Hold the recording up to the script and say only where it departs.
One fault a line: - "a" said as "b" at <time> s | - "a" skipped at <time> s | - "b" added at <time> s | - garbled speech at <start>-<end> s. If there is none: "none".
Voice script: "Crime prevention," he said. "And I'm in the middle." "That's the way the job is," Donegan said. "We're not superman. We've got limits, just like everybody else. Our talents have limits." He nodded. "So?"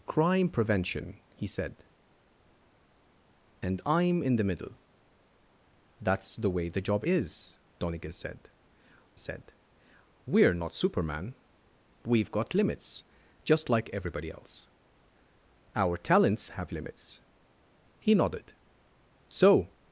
- "said" added at 9.2 s